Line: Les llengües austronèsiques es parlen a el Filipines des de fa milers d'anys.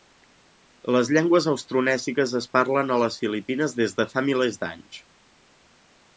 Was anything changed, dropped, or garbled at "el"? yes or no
yes